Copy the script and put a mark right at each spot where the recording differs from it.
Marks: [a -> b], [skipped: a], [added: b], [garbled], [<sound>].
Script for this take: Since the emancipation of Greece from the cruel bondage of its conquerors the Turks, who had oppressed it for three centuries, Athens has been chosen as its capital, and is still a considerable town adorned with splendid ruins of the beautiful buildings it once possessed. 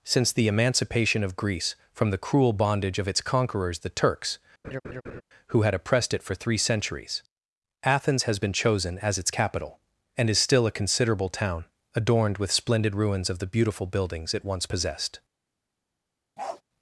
Since the emancipation of Greece from the cruel bondage of its conquerors the Turks, [laugh] who had oppressed it for three centuries, Athens has been chosen as its capital, and is still a considerable town adorned with splendid ruins of the beautiful buildings it once possessed. [bark]